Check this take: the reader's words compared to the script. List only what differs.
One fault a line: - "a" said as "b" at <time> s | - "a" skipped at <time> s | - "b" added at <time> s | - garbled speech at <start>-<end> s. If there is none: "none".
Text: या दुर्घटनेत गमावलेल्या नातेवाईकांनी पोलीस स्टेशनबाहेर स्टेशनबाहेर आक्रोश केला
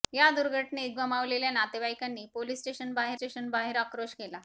none